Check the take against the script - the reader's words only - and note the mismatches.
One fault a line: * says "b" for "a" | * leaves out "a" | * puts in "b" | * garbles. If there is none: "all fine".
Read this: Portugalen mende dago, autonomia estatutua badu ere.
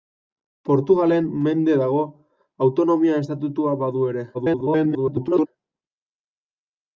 * garbles